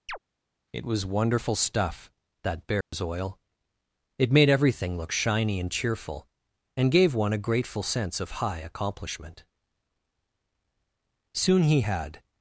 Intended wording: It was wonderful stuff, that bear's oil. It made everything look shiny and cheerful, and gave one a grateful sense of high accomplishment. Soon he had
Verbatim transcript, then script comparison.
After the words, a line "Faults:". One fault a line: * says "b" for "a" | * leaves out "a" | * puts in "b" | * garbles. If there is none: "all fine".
It was wonderful stuff, that bear's oil. It made everything look shiny and cheerful, and gave one a grateful sense of high accomplishment. Soon he had
Faults:
all fine